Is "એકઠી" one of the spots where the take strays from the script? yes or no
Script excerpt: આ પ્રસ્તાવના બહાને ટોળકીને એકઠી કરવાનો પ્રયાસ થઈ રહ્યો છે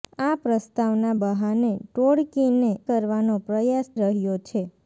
yes